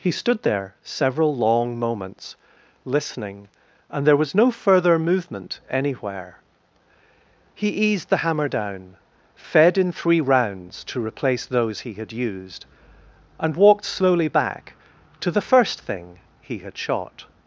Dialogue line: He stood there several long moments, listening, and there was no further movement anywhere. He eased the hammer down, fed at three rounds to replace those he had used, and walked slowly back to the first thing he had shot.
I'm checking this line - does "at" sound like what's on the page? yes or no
no